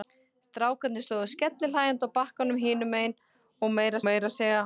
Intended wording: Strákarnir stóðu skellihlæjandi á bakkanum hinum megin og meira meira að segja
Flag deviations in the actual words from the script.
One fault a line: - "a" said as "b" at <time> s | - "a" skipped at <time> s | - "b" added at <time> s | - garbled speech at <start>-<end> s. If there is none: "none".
none